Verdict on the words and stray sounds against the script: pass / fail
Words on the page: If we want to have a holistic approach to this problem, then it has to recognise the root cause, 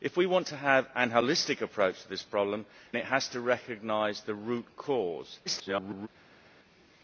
fail